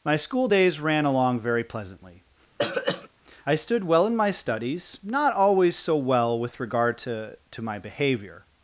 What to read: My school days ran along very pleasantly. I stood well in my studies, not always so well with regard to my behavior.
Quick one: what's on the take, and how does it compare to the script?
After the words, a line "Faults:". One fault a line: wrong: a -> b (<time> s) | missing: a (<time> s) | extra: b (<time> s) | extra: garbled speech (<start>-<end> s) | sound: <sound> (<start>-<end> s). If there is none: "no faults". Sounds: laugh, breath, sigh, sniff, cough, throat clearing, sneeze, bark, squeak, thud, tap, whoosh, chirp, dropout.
My school days ran along very pleasantly. I stood well in my studies, not always so well with regard to to my behavior.
Faults:
sound: throat clearing (2.6-3.1 s)
extra: to (7.5 s)